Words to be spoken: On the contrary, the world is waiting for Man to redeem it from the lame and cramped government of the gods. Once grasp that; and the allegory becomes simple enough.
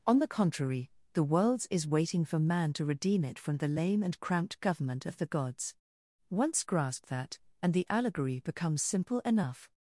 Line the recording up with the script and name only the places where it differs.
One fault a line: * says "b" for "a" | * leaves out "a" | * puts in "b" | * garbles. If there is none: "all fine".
* says "worlds" for "world"